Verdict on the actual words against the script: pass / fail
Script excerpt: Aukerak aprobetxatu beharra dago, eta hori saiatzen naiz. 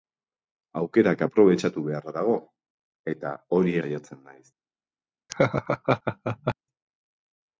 pass